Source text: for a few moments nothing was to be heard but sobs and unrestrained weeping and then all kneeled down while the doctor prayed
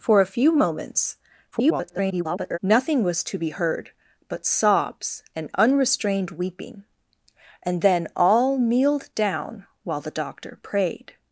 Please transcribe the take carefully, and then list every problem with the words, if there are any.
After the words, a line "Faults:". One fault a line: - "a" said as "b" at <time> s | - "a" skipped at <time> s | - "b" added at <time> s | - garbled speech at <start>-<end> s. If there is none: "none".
for a few moments [garbled] nothing was to be heard but sobs and unrestrained weeping and then all kneeled down while the doctor prayed
Faults:
- garbled speech at 1.5-2.6 s